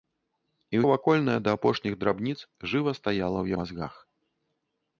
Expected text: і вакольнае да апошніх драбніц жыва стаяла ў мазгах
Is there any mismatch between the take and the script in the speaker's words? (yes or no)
no